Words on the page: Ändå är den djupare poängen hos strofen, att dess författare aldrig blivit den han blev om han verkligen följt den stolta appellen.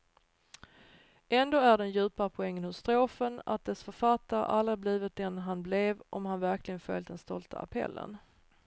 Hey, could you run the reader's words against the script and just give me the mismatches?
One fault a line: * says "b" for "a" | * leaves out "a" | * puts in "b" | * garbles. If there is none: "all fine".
all fine